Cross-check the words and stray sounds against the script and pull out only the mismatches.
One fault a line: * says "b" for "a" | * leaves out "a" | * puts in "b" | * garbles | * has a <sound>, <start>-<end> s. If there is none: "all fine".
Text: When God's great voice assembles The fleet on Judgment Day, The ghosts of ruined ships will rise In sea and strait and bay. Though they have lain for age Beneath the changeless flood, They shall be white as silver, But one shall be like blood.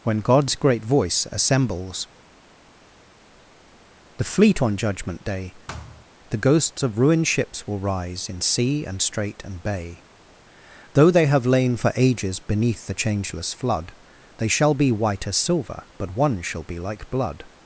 * has a thud, 5.7-6.1 s
* says "ages" for "age"